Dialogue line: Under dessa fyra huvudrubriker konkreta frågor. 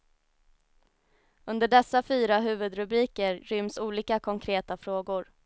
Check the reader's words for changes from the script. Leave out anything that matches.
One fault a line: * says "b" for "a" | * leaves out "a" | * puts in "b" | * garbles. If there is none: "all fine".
* puts in "ryms olika"